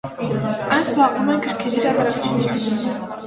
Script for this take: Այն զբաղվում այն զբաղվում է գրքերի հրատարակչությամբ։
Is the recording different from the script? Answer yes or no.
yes